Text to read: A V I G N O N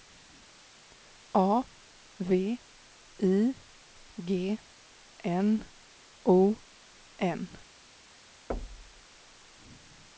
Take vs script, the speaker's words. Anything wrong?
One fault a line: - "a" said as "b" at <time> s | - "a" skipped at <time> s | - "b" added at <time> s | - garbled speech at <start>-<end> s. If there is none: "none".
none